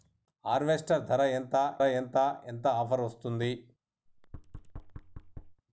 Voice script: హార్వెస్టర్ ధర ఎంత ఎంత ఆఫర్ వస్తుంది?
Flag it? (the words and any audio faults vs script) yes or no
yes